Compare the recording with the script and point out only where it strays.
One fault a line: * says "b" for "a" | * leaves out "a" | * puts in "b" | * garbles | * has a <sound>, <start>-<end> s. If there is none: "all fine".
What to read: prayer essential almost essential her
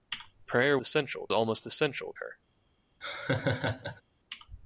* has a laugh, 3.0-4.0 s